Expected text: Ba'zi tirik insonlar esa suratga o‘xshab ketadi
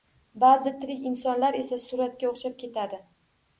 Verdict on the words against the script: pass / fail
pass